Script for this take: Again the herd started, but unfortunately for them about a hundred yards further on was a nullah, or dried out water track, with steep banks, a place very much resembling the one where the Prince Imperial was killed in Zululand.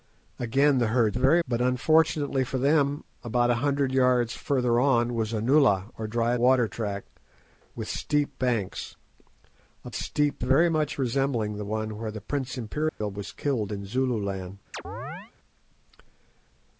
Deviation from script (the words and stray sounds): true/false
true